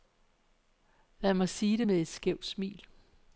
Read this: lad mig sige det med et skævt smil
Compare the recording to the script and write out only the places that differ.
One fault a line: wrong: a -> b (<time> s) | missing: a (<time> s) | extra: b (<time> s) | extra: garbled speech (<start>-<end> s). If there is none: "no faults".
no faults